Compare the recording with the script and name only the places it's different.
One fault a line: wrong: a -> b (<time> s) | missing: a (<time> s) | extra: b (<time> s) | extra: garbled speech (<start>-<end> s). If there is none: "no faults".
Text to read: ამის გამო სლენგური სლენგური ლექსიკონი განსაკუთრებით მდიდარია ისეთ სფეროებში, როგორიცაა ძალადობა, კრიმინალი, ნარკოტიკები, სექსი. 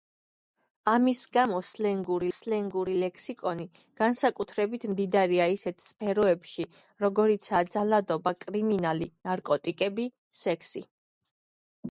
no faults